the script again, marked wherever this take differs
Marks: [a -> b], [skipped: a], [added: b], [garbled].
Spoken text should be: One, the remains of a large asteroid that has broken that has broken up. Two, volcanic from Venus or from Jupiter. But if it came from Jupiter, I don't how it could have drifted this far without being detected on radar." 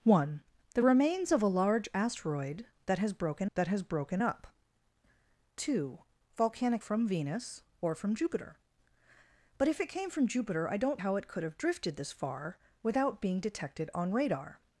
One, the remains of a large asteroid that has broken that has broken up. Two, volcanic from Venus or from Jupiter. But if it came from Jupiter, I don't how it could have drifted this far without being detected on radar."